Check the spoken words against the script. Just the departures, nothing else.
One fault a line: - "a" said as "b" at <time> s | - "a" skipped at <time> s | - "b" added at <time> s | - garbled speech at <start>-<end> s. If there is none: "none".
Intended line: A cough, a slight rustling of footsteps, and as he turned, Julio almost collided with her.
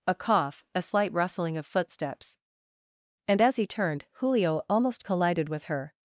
none